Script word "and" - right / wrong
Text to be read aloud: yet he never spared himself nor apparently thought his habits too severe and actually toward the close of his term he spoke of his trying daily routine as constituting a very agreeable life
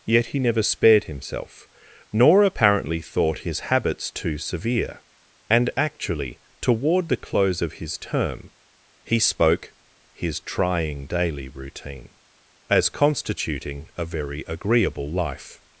right